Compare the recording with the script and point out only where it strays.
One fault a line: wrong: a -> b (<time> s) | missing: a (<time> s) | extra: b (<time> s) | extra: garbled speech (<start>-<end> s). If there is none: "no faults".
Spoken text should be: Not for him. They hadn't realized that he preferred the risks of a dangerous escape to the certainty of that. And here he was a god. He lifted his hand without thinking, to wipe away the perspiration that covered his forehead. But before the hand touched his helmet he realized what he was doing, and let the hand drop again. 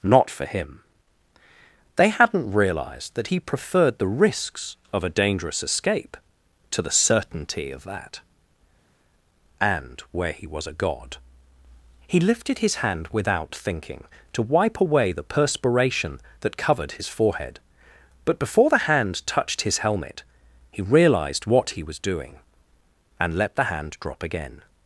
wrong: here -> where (10.1 s)